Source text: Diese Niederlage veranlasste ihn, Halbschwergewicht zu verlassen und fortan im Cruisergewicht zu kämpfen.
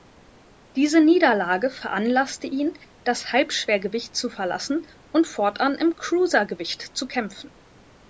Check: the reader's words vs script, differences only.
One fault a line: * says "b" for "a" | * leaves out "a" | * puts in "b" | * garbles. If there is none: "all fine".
* puts in "das"